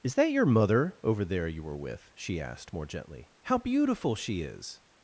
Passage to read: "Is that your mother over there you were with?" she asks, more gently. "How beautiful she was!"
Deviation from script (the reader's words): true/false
true